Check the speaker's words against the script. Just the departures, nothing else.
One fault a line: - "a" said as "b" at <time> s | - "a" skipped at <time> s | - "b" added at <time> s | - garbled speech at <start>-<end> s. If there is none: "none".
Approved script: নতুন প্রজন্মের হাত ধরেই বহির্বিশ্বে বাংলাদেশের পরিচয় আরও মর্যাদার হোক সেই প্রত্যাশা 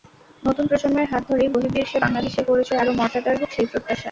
none